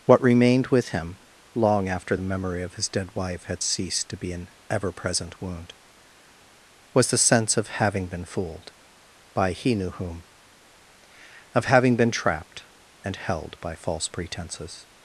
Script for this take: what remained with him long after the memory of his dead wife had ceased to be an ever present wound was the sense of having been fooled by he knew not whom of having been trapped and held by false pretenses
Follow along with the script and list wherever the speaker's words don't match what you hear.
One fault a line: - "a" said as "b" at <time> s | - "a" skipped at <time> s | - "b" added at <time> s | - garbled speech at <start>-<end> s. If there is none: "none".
- "not" skipped at 9.9 s